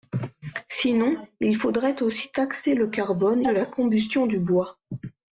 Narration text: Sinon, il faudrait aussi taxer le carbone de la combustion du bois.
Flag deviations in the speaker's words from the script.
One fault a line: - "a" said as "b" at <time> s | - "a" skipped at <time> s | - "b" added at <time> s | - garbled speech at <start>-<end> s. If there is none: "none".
none